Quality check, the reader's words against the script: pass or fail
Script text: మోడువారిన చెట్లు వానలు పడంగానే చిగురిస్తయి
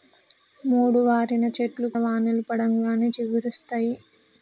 pass